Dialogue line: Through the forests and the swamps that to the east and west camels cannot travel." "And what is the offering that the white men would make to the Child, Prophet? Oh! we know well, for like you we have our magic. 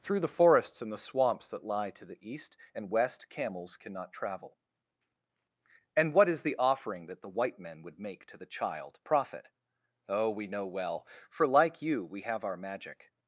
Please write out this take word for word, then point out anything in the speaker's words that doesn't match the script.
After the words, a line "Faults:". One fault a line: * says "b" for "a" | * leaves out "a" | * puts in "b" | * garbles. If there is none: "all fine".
Through the forests and the swamps that lie to the east and west camels cannot travel." "And what is the offering that the white men would make to the Child, Prophet? Oh! we know well, for like you we have our magic.
Faults:
* puts in "lie"